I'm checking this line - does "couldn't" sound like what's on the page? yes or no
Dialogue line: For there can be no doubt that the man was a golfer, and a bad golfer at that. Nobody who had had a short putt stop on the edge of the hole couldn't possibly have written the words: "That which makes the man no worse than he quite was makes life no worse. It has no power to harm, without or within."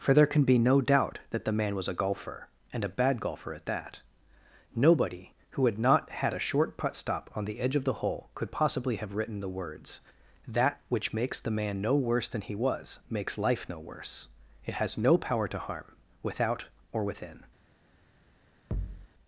no